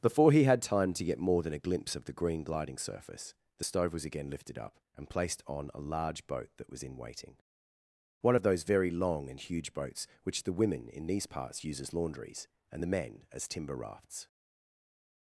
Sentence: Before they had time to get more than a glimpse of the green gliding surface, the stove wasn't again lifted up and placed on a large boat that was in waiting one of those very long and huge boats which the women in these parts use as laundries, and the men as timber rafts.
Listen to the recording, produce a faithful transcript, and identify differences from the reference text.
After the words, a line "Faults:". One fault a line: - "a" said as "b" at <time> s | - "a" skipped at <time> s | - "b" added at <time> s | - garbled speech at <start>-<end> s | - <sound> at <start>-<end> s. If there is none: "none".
Before he had time to get more than a glimpse of the green gliding surface, the stove was again lifted up and placed on a large boat that was in waiting one of those very long and huge boats which the women in these parts use as laundries, and the men as timber rafts.
Faults:
- "they" said as "he" at 0.3 s
- "wasn't" said as "was" at 3.9 s